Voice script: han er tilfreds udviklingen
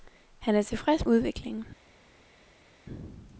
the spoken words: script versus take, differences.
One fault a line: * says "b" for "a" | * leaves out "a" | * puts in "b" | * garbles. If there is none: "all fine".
all fine